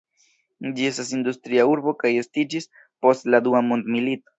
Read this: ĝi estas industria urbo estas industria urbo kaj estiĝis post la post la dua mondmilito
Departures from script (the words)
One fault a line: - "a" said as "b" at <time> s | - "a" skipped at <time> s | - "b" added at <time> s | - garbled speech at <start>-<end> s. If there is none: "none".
- "estas industria urbo" skipped at 2.0 s
- "post la" skipped at 3.5 s